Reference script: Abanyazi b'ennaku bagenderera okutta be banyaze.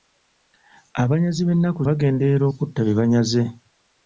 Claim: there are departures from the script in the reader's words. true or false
false